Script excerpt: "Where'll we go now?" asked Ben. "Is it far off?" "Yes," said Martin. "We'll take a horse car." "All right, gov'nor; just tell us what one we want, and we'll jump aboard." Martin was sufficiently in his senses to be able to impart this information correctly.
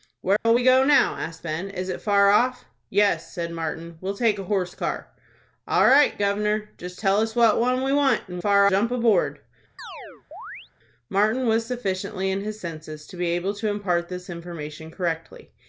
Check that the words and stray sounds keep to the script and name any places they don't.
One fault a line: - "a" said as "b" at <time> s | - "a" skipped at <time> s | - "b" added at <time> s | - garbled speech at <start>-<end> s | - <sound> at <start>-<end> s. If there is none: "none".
- dropout at 0.4-0.5 s
- "we'll" said as "far" at 8.4 s
- chirp at 9.8-10.7 s